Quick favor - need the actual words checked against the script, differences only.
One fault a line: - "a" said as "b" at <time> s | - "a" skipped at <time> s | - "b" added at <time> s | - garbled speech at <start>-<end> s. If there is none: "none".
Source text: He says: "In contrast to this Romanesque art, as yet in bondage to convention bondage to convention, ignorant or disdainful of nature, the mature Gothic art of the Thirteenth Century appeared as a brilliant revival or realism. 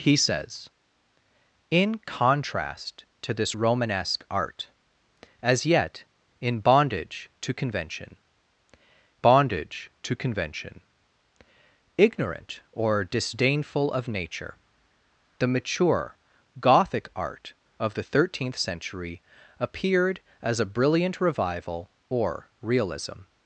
none